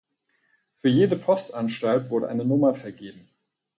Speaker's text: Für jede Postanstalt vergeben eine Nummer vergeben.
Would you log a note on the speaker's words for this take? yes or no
yes